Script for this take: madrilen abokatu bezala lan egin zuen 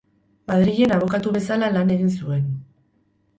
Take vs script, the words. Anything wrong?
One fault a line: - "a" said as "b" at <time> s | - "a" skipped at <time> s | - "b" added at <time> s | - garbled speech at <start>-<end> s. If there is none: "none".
none